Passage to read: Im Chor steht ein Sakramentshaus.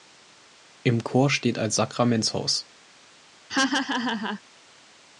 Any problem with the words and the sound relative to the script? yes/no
yes